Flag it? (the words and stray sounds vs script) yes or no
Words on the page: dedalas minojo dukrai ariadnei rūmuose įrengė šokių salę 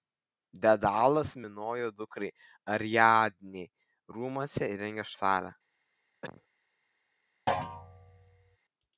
yes